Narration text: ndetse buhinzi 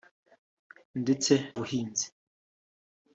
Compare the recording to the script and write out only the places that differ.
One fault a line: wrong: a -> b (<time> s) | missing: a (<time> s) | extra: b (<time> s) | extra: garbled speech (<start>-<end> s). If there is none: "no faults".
no faults